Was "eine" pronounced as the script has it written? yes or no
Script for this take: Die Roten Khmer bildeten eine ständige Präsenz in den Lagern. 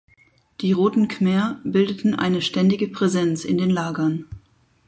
yes